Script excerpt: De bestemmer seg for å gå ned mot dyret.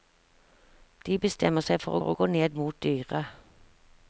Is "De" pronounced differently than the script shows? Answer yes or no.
no